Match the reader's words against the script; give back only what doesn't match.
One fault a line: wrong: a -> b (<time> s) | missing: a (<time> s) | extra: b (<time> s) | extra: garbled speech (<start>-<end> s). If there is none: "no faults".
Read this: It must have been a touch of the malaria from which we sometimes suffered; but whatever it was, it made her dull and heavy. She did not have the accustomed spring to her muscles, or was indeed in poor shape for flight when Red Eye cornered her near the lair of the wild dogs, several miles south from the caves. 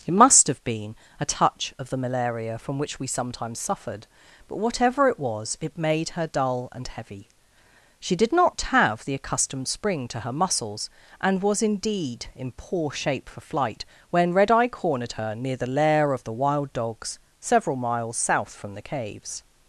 wrong: or -> and (11.2 s)